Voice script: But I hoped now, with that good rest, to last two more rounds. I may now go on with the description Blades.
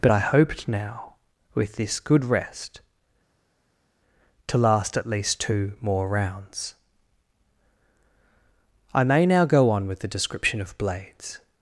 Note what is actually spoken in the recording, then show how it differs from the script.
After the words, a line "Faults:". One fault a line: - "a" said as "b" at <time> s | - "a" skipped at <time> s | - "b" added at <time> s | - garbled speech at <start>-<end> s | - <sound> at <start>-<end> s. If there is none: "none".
But I hoped now, with this good rest, to last at least two more rounds. I may now go on with the description of Blades.
Faults:
- "that" said as "this" at 1.7 s
- "at least" added at 5.0 s
- "of" added at 10.6 s